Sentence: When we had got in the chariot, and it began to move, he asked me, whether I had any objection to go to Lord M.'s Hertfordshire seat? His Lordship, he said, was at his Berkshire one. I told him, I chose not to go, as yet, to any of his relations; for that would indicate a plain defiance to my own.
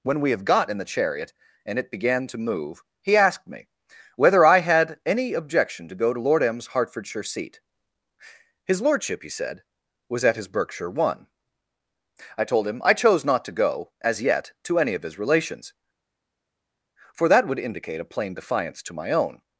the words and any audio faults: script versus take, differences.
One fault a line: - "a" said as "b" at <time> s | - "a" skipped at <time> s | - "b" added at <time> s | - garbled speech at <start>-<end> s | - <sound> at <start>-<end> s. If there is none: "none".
- "had" said as "have" at 0.3 s